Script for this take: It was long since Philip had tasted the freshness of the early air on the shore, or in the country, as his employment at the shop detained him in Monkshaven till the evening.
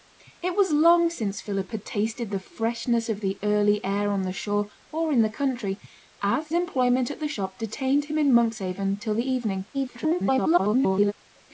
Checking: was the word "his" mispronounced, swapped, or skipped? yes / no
yes